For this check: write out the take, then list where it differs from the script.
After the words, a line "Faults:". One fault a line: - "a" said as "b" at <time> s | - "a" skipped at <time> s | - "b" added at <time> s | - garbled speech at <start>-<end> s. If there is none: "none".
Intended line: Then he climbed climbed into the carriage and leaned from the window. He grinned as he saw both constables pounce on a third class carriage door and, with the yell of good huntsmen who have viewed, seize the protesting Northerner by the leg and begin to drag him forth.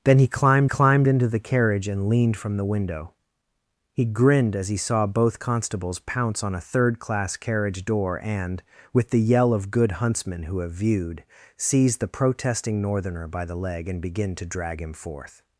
Then he climbed climbed into the carriage and leaned from the window. He grinned as he saw both constables pounce on a third class carriage door and, with the yell of good huntsmen who have viewed, seize the protesting Northerner by the leg and begin to drag him forth.
Faults:
none